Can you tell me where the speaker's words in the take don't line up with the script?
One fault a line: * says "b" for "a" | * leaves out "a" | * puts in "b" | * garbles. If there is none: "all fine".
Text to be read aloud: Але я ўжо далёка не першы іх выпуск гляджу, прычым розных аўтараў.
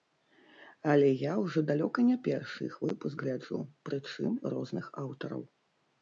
all fine